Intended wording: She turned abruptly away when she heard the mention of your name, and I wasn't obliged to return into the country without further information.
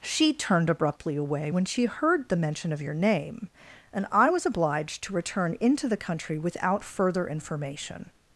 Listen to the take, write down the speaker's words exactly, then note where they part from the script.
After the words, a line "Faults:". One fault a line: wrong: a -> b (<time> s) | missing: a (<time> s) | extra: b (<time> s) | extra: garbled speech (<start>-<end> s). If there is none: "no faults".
She turned abruptly away when she heard the mention of your name, and I was obliged to return into the country without further information.
Faults:
wrong: wasn't -> was (4.3 s)